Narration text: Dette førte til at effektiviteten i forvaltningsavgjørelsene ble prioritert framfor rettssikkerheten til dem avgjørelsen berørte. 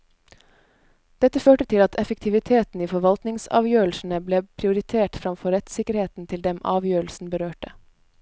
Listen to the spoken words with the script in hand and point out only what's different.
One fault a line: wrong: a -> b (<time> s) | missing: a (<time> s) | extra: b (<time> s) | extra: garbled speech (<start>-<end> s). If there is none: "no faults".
no faults